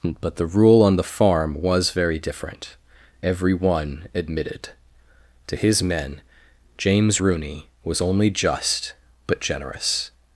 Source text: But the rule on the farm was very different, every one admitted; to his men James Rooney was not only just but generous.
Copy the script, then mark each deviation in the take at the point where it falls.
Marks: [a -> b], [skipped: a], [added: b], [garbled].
But the rule on the farm was very different, every one admitted; to his men James Rooney was [skipped: not] only just but generous.